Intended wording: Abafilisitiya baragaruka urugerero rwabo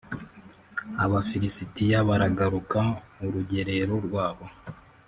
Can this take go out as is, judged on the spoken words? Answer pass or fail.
pass